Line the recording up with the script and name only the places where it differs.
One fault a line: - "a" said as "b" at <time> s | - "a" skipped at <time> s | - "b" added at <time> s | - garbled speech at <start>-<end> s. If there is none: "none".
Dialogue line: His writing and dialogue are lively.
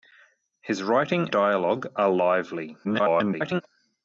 - "and" skipped at 1.3 s
- garbled speech at 2.8-3.6 s